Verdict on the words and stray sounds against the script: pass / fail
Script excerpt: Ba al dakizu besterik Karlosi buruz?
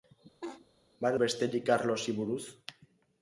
fail